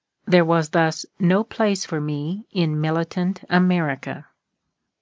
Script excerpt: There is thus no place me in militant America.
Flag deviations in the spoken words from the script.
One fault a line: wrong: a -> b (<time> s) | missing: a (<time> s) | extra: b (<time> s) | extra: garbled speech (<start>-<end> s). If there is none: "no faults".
wrong: is -> was (0.4 s)
extra: for (1.8 s)